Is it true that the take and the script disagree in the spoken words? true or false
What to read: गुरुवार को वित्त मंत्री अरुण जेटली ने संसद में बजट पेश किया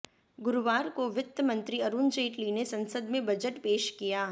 false